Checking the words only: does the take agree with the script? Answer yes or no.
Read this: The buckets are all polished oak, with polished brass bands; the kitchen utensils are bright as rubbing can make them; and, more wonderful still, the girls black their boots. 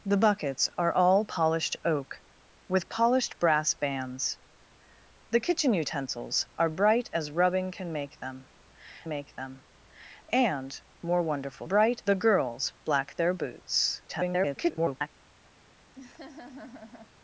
no